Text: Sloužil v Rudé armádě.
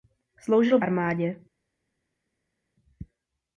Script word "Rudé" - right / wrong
wrong